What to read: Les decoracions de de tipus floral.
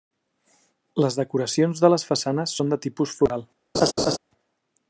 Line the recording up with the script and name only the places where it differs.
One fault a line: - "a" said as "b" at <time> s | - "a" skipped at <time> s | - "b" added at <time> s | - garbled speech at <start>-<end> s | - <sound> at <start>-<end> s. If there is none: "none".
- "les façanes són" added at 1.9 s
- laugh at 3.7-4.2 s